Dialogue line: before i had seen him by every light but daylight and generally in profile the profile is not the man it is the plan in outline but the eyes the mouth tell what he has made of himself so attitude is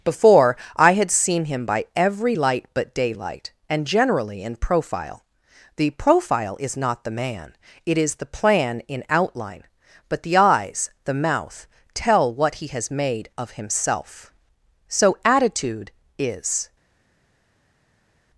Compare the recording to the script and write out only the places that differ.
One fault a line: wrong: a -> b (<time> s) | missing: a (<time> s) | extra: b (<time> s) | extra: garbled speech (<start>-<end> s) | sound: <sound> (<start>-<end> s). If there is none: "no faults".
no faults